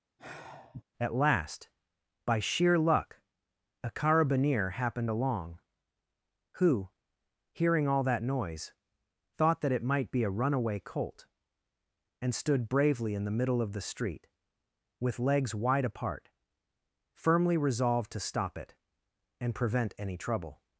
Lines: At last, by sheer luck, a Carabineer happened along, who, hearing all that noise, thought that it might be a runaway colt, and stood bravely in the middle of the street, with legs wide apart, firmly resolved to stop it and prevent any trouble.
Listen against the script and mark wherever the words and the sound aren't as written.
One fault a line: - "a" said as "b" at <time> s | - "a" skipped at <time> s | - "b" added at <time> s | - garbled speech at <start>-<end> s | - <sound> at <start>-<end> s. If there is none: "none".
- sigh at 0.2-0.8 s